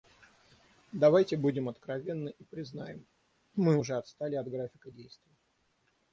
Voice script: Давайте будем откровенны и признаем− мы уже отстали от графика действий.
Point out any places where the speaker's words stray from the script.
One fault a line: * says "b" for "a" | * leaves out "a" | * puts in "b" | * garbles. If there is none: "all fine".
all fine